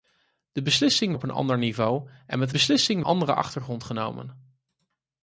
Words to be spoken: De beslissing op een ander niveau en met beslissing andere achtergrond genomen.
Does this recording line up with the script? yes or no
yes